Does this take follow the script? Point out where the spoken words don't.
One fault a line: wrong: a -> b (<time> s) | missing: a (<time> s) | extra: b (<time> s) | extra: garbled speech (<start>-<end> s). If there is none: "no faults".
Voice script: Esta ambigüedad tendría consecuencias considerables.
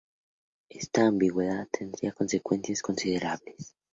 no faults